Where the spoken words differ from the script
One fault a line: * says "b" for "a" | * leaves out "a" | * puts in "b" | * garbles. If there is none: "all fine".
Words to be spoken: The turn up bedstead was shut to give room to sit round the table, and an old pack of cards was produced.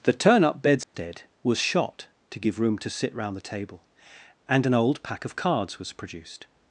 * says "shot" for "shut"